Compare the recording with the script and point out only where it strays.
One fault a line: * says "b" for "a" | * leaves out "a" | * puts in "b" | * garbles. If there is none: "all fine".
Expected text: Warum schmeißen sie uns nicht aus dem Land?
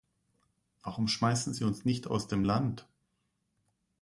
all fine